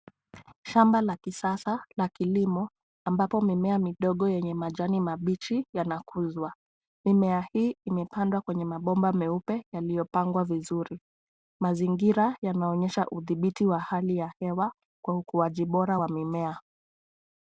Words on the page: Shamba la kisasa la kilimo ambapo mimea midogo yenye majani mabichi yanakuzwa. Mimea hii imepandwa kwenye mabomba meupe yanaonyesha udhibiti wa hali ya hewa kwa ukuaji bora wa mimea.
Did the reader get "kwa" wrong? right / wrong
right